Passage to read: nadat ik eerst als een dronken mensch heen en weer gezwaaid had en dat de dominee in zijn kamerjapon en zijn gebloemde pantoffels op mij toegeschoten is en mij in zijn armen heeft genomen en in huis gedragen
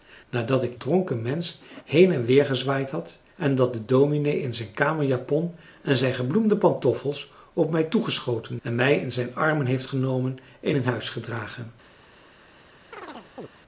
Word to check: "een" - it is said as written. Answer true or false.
false